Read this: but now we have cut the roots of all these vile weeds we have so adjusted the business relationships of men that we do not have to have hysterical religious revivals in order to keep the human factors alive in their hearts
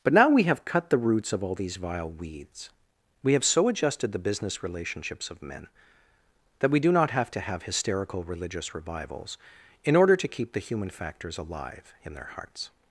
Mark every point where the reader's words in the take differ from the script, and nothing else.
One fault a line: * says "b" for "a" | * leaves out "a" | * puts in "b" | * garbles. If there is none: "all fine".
all fine